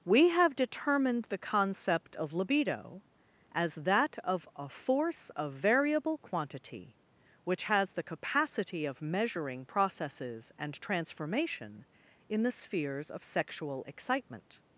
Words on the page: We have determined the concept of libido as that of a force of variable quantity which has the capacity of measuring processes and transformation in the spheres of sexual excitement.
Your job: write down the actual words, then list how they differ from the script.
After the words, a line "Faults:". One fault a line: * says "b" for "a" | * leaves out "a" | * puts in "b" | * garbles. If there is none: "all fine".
We have determined the concept of libido as that of a force of variable quantity which has the capacity of measuring processes and transformation in the spheres of sexual excitement.
Faults:
all fine